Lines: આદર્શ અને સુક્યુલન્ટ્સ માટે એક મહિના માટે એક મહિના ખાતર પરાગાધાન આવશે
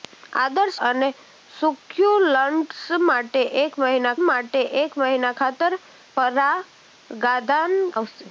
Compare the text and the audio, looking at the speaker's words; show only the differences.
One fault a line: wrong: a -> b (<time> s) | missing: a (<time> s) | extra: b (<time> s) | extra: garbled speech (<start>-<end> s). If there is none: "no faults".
no faults